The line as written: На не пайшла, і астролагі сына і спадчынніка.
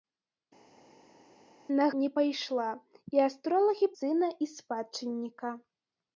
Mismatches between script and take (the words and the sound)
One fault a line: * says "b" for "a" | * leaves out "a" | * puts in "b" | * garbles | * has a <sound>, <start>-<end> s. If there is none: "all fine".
all fine